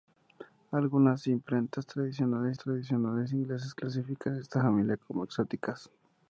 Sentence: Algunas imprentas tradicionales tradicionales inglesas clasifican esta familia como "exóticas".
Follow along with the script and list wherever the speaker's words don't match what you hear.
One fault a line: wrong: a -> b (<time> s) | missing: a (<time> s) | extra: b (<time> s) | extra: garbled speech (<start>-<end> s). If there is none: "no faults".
no faults